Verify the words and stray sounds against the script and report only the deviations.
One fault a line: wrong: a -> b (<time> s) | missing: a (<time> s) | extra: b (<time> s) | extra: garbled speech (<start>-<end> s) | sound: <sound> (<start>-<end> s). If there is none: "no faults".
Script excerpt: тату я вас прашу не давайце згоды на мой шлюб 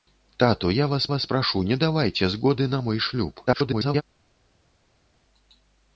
extra: вас (1.1 s)
extra: garbled speech (3.5-4.0 s)